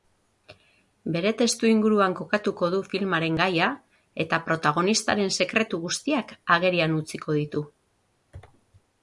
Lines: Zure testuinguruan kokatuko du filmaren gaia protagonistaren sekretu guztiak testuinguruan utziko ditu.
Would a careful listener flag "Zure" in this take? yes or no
yes